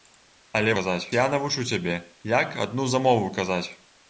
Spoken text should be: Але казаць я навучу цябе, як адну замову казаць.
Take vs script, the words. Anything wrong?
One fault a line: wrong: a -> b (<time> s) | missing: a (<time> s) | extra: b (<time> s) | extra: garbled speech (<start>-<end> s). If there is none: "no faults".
no faults